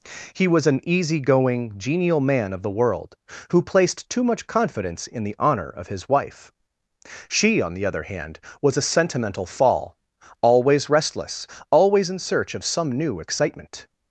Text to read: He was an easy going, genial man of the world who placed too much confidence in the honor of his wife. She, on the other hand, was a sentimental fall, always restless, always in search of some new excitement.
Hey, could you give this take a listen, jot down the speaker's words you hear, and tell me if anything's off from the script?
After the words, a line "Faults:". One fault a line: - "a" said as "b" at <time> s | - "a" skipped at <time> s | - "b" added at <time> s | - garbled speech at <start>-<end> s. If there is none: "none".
He was an easy going, genial man of the world who placed too much confidence in the honor of his wife. She, on the other hand, was a sentimental fall, always restless, always in search of some new excitement.
Faults:
none